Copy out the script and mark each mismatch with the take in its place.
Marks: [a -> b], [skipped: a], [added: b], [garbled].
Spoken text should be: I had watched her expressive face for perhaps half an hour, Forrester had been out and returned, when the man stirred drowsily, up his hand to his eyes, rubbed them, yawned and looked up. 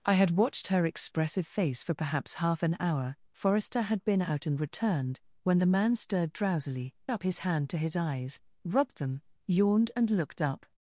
I had watched her expressive face for perhaps half an hour, Forrester had been out and returned, when the man stirred drowsily, up his hand to his eyes, rubbed them, yawned and looked up.